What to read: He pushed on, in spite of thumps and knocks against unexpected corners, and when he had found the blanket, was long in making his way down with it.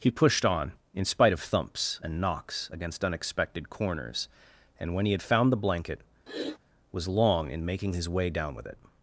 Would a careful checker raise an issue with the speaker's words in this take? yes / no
no